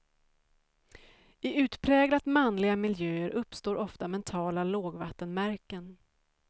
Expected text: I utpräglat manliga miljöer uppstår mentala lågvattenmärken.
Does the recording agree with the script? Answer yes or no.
no